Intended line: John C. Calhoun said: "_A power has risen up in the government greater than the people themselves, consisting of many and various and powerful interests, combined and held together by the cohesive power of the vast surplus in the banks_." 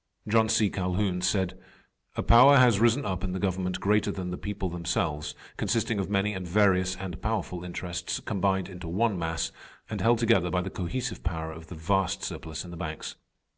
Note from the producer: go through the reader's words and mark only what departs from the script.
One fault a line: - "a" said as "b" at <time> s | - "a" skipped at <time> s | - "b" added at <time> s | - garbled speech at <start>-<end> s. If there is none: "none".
- "into one mass" added at 8.7 s